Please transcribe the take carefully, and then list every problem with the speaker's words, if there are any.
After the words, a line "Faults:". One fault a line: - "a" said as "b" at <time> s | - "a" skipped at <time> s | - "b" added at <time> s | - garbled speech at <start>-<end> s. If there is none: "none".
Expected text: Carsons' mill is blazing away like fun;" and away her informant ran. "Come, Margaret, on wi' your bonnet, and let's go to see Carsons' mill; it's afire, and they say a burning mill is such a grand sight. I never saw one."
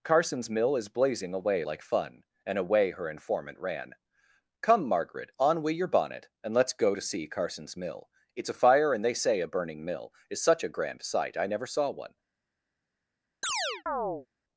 Carsons' mill is blazing away like fun;" and away her informant ran. "Come, Margaret, on wi' your bonnet, and let's go to see Carsons' mill; it's afire, and they say a burning mill is such a grand sight. I never saw one."
Faults:
none